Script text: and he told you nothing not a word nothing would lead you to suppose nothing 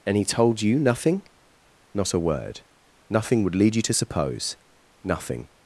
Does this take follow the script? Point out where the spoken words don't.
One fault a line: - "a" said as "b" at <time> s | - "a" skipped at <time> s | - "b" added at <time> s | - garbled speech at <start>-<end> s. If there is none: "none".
none